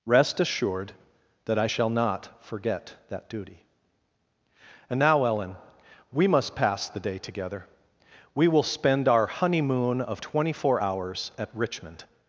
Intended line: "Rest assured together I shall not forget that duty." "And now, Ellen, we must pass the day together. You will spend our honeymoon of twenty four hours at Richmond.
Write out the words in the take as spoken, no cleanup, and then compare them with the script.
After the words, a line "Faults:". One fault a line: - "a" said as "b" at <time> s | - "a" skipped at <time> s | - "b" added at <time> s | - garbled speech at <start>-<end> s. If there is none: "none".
"Rest assured that I shall not forget that duty." "And now, Ellen, we must pass the day together. We will spend our honeymoon of twenty four hours at Richmond.
Faults:
- "together" said as "that" at 1.4 s
- "You" said as "We" at 8.3 s